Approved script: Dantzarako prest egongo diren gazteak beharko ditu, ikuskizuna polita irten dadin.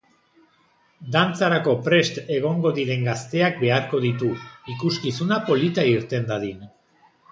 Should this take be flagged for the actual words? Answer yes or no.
no